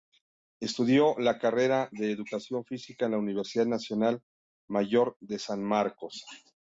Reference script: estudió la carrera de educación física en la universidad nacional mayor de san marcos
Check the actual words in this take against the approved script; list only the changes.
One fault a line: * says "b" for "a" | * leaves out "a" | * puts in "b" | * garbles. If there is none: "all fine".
all fine